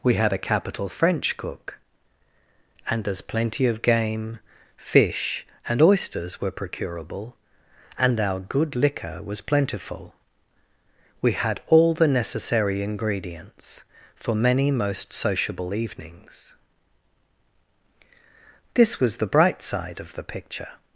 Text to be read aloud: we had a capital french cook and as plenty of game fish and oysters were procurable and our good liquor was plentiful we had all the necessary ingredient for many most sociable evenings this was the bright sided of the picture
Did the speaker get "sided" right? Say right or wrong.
wrong